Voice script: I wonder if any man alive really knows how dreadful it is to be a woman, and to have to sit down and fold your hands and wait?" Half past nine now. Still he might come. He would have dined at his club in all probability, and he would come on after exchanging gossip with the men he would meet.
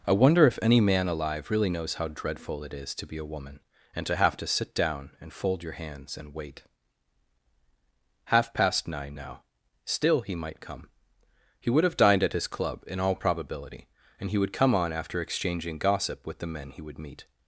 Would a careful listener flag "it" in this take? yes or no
no